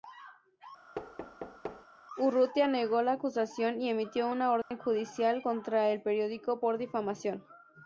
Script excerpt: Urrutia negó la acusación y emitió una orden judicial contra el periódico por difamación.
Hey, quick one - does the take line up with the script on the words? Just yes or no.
yes